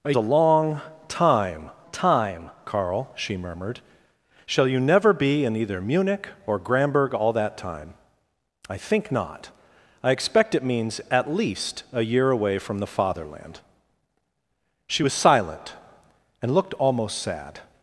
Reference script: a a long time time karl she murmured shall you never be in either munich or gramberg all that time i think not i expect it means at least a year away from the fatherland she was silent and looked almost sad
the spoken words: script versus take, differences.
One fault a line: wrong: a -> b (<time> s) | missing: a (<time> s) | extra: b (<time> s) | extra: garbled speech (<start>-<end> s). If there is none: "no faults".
no faults